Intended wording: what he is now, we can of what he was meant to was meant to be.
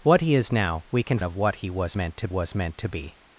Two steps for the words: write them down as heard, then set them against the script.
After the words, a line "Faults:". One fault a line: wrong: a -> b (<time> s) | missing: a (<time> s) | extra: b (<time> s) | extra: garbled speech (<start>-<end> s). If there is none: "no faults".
what he is now, we can of what he was meant to was meant to be.
Faults:
no faults